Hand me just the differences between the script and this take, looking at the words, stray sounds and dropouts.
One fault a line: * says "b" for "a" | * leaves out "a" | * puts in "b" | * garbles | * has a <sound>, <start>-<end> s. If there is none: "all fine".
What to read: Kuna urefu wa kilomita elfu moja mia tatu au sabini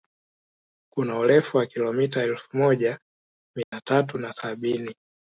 * has a dropout, 3.6-3.7 s
* says "na" for "au"